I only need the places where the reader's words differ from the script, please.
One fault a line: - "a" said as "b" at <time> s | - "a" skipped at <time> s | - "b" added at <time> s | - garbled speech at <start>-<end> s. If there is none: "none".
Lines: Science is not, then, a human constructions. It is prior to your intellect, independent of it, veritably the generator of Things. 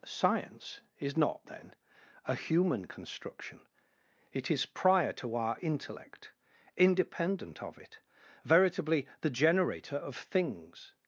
- "constructions" said as "construction" at 2.9 s
- "your" said as "our" at 5.4 s